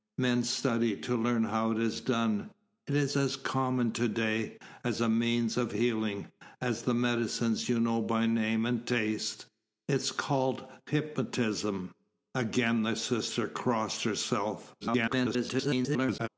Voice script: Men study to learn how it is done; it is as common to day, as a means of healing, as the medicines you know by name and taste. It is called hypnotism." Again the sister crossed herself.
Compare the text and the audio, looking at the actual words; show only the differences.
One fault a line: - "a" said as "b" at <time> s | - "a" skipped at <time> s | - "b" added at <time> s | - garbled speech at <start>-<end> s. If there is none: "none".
- garbled speech at 14.8-16.3 s